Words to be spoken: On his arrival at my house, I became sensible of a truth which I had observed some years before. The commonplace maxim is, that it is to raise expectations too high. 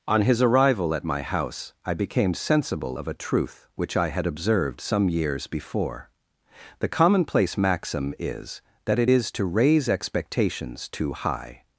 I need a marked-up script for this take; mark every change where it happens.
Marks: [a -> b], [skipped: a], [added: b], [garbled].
On his arrival at my house, I became sensible of a truth which I had observed some years before. The commonplace maxim is, that it is to raise expectations too high.